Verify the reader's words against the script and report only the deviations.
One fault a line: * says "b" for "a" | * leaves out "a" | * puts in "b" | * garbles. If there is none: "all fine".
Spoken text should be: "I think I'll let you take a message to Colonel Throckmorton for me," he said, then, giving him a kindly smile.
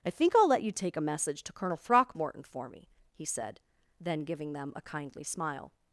* says "them" for "him"